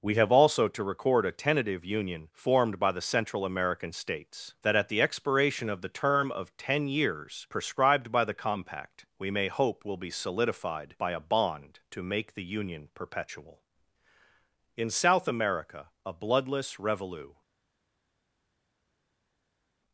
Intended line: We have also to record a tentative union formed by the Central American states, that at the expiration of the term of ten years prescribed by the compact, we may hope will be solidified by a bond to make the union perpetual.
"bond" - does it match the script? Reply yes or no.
yes